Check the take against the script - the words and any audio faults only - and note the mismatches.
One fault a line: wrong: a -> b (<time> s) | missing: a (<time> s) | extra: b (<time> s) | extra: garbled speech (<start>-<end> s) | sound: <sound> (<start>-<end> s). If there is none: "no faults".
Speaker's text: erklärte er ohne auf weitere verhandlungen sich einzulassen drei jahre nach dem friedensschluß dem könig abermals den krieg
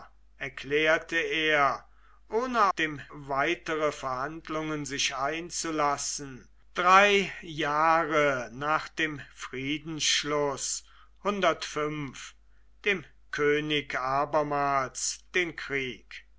wrong: auf -> dem (2.7 s)